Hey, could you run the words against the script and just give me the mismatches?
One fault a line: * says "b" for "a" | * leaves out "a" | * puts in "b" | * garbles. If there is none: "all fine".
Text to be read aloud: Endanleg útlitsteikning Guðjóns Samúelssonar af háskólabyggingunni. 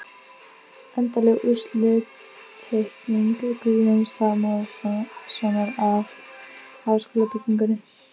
all fine